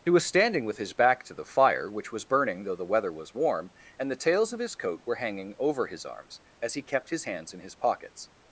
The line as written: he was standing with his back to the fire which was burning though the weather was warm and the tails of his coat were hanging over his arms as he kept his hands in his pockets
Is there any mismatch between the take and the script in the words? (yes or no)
no